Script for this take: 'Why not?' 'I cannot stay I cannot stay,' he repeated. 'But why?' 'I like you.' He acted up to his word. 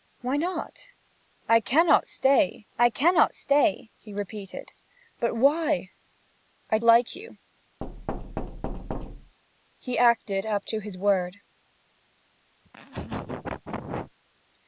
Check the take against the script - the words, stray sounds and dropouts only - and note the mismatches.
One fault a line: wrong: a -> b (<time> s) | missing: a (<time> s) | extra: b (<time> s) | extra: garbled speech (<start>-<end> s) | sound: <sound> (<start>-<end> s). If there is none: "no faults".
sound: thud (7.8-9.4 s)
sound: laugh (12.6-14.1 s)